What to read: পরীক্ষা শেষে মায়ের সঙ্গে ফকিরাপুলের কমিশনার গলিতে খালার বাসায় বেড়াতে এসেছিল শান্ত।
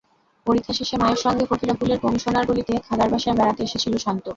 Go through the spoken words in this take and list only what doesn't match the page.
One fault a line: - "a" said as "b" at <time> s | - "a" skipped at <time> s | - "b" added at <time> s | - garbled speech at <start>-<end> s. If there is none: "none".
none